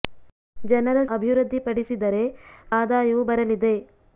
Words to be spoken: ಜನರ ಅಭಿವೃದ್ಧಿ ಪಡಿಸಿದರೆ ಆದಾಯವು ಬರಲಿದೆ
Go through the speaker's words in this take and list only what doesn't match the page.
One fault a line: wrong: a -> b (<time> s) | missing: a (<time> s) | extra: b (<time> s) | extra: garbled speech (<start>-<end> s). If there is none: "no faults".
no faults